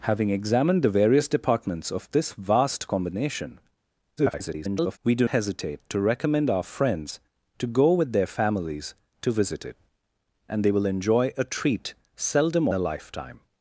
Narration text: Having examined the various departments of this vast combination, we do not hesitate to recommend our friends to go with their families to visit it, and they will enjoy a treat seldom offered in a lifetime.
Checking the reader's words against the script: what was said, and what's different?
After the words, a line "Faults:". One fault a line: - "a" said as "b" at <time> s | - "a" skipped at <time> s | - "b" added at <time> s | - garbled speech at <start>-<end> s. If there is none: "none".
Having examined the various departments of this vast combination, [garbled] we do hesitate to recommend our friends to go with their families to visit it, and they will enjoy a treat seldom a lifetime.
Faults:
- garbled speech at 4.2-5.0 s
- "not" skipped at 5.3 s
- "offered in" skipped at 12.7 s